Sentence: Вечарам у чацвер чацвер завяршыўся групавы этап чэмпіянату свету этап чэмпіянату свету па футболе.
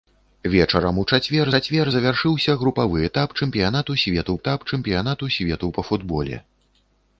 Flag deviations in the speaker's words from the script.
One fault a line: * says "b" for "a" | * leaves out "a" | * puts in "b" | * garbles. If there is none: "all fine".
all fine